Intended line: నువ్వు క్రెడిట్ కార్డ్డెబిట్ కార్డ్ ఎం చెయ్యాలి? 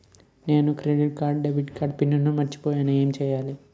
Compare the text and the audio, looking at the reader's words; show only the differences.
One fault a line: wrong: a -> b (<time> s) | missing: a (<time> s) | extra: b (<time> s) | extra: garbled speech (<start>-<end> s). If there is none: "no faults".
wrong: నువ్వు -> నేను (0.5 s)
extra: పిన్ మర్చిపోయేను (2.0 s)